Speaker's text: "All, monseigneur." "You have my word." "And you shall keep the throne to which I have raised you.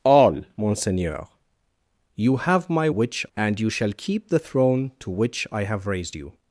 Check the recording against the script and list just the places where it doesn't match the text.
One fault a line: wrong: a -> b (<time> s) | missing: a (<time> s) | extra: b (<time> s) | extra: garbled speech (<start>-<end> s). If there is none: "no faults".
wrong: word -> which (2.9 s)